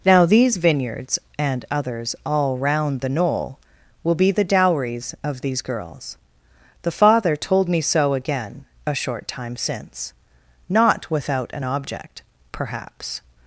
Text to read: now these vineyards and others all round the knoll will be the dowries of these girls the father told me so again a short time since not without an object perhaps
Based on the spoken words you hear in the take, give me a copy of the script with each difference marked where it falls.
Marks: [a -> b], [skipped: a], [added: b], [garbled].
now these vineyards and others all round the knoll will be the dowries of these girls the father told me so again a short time since not without an object perhaps